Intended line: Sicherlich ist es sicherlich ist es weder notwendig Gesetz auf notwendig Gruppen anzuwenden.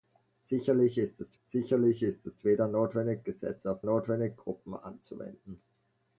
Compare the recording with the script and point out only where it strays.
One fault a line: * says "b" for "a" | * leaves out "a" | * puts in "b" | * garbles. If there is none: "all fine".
all fine